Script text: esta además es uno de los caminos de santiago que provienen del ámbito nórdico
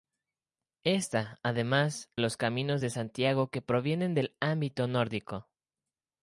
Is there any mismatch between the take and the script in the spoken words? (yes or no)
yes